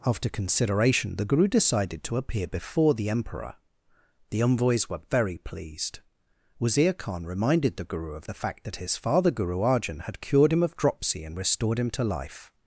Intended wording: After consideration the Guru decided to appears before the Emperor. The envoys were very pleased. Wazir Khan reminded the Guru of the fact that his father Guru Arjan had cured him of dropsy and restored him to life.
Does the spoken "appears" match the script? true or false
false